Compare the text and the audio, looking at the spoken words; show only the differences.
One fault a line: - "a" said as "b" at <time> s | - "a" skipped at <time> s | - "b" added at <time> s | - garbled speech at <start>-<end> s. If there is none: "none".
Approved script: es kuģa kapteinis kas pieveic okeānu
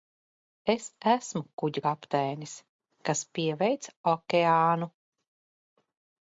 - "esmu" added at 1.1 s